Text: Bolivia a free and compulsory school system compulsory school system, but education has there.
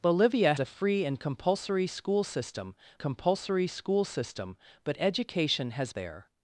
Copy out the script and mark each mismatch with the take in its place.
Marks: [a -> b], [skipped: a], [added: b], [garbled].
Bolivia a free and compulsory school system compulsory school system, but education has there.